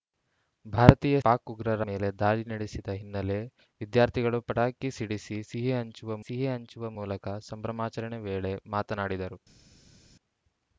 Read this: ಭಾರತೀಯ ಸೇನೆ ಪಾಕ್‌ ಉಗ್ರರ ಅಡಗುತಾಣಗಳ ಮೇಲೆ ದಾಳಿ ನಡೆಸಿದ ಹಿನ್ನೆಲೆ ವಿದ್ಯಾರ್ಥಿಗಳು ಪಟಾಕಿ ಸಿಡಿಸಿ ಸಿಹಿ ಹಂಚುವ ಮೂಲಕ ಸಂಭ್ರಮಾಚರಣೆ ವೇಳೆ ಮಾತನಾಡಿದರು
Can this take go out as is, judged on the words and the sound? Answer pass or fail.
fail